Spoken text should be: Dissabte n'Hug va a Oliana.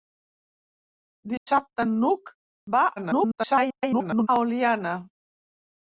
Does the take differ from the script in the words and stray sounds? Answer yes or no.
yes